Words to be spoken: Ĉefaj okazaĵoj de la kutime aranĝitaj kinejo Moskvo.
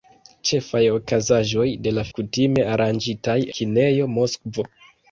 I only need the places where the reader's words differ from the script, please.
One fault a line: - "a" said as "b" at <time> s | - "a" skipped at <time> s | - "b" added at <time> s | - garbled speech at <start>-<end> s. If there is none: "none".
none